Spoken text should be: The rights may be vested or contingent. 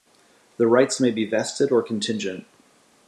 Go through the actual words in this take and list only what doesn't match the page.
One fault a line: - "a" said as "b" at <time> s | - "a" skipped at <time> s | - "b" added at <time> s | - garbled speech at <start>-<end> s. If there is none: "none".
none